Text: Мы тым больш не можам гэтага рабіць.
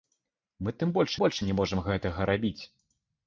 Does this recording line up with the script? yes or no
no